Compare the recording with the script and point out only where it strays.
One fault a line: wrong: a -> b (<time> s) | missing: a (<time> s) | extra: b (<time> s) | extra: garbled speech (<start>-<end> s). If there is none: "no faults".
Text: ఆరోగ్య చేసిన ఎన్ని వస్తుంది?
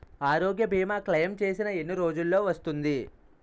extra: భీమా క్లైమ్ (0.7 s)
extra: రోజ్జులో (1.9 s)